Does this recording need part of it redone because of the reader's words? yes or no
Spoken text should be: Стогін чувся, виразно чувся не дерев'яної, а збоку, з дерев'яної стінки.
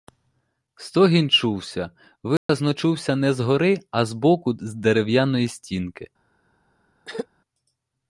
yes